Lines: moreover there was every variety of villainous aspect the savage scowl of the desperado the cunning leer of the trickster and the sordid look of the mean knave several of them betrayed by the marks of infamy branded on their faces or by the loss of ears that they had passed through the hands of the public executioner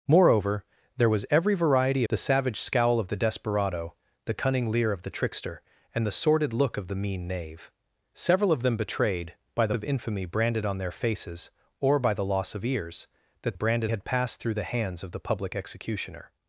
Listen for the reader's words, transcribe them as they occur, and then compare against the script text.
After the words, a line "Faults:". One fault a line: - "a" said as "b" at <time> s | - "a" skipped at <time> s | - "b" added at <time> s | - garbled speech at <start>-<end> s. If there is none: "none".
moreover there was every variety the savage scowl of the desperado the cunning leer of the trickster and the sordid look of the mean knave several of them betrayed by the of infamy branded on their faces or by the loss of ears that branded had passed through the hands of the public executioner
Faults:
- "of villainous aspect" skipped at 2.0 s
- "marks" skipped at 9.8 s
- "they" said as "branded" at 13.5 s